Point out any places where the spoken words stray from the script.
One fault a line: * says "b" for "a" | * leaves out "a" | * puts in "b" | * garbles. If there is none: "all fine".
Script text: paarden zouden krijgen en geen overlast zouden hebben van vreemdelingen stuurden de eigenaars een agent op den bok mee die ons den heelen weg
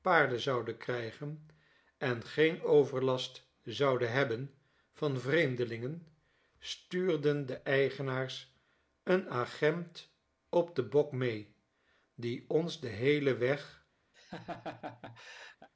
all fine